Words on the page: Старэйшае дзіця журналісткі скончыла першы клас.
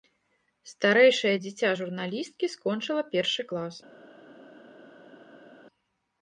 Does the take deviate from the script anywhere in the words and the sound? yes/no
no